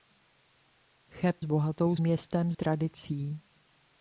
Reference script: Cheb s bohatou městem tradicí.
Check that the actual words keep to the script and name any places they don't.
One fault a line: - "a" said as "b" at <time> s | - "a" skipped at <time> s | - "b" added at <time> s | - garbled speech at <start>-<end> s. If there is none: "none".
none